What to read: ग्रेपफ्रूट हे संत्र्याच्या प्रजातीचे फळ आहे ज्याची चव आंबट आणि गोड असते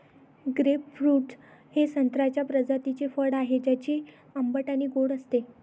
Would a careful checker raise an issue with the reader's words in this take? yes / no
yes